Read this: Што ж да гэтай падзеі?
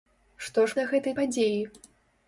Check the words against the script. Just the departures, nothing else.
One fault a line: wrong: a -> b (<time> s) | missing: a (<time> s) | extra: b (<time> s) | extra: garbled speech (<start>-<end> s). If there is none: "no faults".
no faults